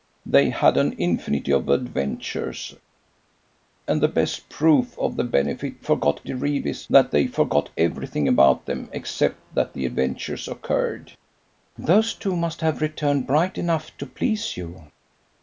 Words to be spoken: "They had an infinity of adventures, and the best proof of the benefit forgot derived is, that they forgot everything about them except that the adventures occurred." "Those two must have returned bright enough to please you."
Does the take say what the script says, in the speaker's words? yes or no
yes